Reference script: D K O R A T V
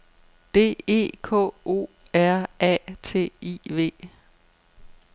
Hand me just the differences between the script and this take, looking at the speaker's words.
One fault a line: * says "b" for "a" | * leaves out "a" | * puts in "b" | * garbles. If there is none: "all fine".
* puts in "E"
* puts in "I"